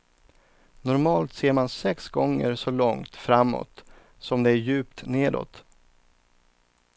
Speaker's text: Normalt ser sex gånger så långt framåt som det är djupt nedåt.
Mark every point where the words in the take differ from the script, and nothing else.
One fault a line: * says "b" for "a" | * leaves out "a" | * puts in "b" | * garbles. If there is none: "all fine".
* puts in "man"